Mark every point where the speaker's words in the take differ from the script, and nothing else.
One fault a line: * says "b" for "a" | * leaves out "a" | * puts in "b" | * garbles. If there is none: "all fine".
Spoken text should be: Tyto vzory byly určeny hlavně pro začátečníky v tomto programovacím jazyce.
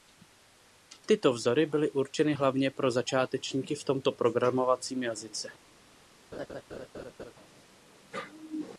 all fine